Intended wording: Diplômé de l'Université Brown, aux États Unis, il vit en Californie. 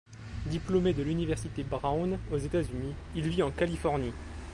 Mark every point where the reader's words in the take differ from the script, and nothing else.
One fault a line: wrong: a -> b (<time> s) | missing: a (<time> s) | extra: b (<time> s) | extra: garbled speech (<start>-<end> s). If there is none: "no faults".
no faults